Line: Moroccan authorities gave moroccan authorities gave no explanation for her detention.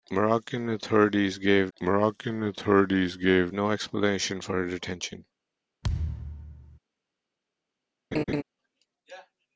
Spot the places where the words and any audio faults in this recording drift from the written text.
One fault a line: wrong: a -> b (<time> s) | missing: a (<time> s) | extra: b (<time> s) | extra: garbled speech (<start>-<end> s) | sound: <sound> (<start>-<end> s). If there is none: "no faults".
sound: thud (5.8-6.8 s)
sound: laugh (8.1-8.4 s)